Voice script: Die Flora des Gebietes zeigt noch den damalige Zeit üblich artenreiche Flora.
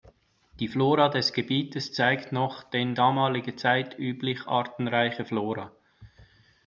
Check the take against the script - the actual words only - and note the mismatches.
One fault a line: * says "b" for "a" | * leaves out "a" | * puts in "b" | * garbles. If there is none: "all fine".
all fine